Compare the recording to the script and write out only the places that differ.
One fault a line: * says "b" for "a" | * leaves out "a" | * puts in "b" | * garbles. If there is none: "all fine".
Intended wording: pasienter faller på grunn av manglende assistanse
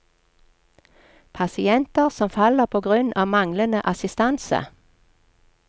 * puts in "som"